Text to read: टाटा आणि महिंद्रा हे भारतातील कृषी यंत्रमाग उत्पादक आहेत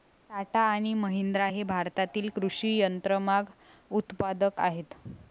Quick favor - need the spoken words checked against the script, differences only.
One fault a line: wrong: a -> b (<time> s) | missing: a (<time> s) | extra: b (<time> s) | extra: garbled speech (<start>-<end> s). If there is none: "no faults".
no faults